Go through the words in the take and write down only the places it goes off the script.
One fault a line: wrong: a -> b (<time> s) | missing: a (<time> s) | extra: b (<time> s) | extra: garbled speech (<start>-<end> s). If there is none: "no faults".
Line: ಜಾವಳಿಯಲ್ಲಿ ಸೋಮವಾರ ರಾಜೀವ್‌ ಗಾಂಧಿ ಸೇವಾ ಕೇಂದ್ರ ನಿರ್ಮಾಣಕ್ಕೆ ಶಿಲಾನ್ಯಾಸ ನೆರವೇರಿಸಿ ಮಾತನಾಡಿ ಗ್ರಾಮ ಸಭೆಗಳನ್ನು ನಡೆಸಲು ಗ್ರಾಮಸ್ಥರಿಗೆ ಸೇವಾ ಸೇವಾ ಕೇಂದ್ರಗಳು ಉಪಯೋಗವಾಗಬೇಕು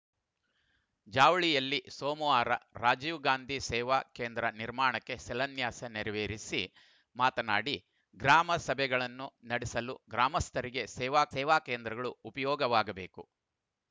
no faults